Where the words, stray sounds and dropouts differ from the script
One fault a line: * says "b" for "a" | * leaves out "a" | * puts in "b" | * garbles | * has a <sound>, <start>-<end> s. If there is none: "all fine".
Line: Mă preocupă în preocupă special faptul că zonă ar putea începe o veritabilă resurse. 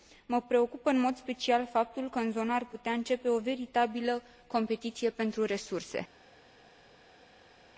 * says "mod" for "preocupă"
* puts in "în"
* puts in "competiție pentru"